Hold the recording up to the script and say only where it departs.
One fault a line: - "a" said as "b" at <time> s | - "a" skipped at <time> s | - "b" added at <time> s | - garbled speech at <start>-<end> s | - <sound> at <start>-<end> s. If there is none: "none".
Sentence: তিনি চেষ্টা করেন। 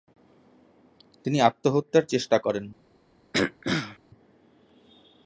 - "আত্মহত্যার" added at 1.4 s
- throat clearing at 3.3-4.0 s